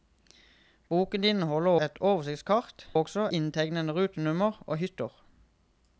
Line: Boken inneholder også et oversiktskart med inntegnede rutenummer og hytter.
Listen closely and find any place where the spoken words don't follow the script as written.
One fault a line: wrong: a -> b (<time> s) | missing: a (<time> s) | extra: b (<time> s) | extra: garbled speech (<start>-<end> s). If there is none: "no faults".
missing: også (1.7 s)
wrong: med -> også (3.0 s)